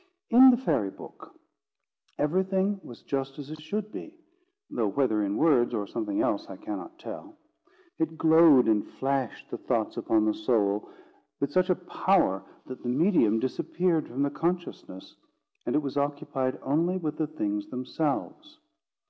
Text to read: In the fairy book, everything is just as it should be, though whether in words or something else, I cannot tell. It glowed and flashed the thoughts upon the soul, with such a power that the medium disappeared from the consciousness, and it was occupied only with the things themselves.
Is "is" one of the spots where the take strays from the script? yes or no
yes